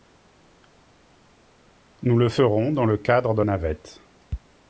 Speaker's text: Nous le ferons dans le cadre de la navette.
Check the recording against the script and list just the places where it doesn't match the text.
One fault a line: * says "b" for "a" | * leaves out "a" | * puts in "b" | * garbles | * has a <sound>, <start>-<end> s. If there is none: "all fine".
* leaves out "la"